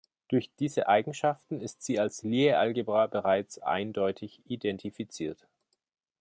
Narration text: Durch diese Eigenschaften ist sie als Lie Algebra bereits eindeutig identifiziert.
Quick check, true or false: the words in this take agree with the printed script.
true